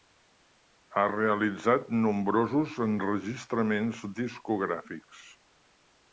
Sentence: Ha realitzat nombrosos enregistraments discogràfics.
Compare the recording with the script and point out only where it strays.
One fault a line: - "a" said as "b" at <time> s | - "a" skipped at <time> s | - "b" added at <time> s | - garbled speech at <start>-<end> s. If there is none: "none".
none